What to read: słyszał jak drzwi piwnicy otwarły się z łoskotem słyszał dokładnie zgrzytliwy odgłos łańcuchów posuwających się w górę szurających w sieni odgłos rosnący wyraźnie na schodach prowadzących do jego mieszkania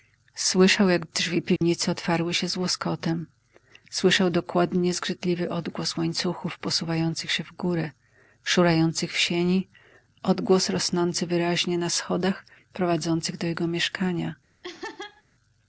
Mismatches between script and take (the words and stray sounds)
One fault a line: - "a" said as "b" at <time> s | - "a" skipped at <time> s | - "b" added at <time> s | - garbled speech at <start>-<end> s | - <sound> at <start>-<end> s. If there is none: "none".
- dropout at 1.6-1.6 s
- laugh at 14.6-15.2 s